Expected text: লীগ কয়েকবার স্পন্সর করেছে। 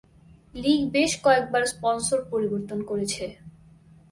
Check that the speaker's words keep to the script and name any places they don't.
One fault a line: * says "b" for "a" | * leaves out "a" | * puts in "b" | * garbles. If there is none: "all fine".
* puts in "বেশ"
* puts in "পরিবর্তন"